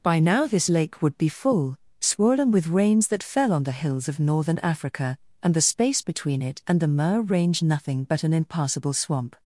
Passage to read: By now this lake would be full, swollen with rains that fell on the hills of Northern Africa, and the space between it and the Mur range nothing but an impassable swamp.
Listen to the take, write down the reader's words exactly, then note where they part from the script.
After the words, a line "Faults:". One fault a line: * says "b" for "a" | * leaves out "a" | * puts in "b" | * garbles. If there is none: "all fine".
By now this lake would be full, swollen with rains that fell on the hills of Northern Africa, and the space between it and the Mur range nothing but an impassable swamp.
Faults:
all fine